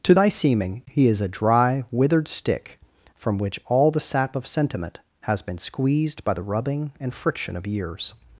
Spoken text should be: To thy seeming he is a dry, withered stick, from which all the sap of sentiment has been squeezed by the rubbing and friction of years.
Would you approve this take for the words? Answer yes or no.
yes